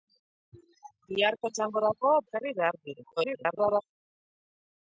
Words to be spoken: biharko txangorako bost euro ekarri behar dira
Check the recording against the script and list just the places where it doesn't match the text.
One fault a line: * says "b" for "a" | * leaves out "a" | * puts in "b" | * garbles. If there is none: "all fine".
* leaves out "bost euro"
* garbles